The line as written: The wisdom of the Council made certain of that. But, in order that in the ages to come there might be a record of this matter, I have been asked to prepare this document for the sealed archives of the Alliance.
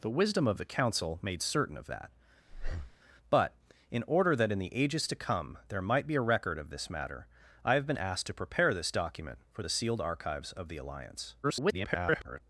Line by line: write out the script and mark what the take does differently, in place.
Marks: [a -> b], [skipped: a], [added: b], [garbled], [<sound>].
The wisdom of the Council made certain of that. [breath] But, in order that in the ages to come there might be a record of this matter, I have been asked to prepare this document for the sealed archives of the Alliance. [garbled]